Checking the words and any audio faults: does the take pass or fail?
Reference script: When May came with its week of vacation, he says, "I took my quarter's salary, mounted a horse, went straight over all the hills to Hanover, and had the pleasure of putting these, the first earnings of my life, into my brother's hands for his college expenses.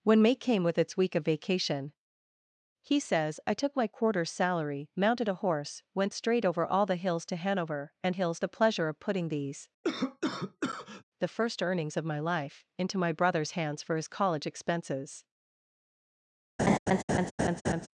fail